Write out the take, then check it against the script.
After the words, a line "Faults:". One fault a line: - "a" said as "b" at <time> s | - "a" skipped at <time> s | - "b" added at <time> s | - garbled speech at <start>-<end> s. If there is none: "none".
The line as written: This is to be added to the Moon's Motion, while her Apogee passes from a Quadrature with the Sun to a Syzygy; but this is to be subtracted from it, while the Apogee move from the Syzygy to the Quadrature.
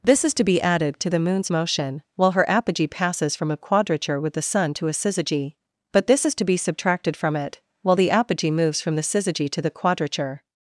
This is to be added to the Moon's Motion, while her Apogee passes from a Quadrature with the Sun to a Syzygy; but this is to be subtracted from it, while the Apogee moves from the Syzygy to the Quadrature.
Faults:
- "move" said as "moves" at 8.5 s